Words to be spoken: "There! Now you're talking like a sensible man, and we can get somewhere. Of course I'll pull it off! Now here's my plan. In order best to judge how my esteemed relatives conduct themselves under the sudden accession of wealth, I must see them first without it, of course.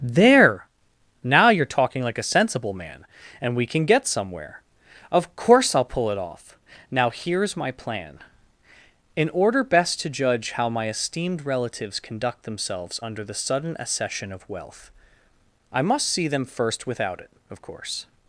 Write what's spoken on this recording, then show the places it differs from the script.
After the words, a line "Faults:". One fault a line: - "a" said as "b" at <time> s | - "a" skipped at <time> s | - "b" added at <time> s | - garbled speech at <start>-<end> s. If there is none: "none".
"There! Now you're talking like a sensible man, and we can get somewhere. Of course I'll pull it off! Now here's my plan. In order best to judge how my esteemed relatives conduct themselves under the sudden accession of wealth, I must see them first without it, of course.
Faults:
none